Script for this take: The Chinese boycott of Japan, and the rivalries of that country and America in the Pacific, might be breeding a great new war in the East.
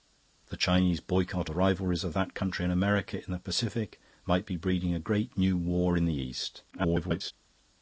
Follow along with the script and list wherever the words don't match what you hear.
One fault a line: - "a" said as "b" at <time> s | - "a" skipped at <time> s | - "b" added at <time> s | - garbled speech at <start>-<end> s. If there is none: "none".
- "of Japan and" skipped at 1.5 s
- garbled speech at 6.7-7.3 s